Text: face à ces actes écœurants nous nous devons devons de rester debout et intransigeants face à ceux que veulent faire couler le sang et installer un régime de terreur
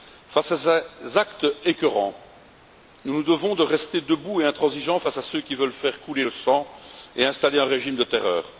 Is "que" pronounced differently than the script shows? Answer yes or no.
yes